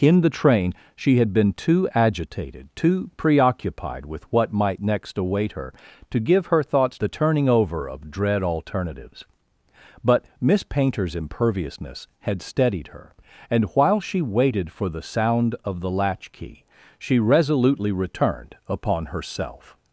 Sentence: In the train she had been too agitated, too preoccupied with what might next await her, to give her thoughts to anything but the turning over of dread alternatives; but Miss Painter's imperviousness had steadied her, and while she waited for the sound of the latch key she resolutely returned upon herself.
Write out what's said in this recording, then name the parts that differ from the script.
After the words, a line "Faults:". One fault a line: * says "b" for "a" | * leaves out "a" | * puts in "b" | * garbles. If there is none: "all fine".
In the train she had been too agitated, too preoccupied with what might next await her, to give her thoughts the turning over of dread alternatives; but Miss Painter's imperviousness had steadied her, and while she waited for the sound of the latch key she resolutely returned upon herself.
Faults:
* leaves out "to anything but"